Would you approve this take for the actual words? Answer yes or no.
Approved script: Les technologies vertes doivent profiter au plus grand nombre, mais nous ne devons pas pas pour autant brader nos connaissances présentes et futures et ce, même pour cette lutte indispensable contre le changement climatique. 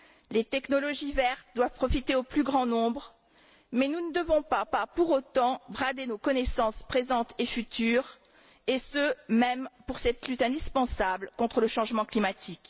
yes